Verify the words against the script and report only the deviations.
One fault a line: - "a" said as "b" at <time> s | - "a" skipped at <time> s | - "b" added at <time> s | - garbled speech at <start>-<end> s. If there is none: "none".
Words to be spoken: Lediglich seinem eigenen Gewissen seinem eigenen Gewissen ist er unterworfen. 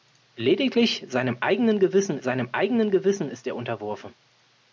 none